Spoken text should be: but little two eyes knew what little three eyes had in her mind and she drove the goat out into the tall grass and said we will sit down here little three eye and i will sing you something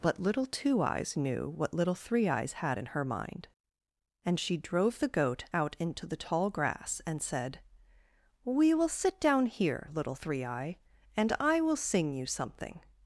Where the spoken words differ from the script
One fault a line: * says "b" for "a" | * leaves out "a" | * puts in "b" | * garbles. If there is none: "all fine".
all fine